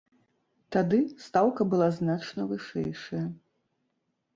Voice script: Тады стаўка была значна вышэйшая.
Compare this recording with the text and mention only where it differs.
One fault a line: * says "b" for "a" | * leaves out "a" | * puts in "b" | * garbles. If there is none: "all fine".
all fine